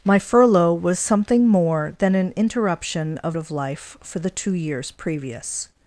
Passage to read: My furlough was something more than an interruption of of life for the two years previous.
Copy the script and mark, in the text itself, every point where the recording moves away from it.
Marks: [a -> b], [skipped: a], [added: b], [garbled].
My furlough was something more than an interruption of of life for the two years previous.